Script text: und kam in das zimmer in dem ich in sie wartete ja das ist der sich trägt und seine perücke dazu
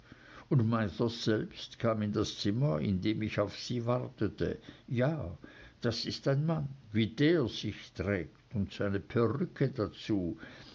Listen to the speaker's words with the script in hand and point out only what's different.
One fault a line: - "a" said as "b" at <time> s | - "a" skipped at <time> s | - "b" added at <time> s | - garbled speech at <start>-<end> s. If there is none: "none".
- "mithers selbst" added at 0.7 s
- "in" said as "auf" at 3.4 s
- "ein mann wie" added at 6.3 s